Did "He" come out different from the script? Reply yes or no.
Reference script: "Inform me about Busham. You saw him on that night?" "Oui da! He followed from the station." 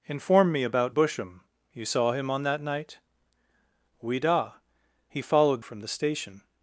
no